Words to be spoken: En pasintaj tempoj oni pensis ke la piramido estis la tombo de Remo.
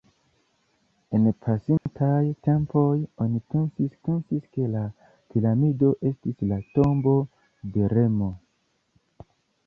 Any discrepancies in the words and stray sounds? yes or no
yes